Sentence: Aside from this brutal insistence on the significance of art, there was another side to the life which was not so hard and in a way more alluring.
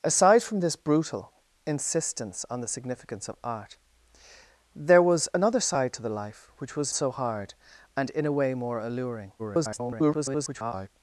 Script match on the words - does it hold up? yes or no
no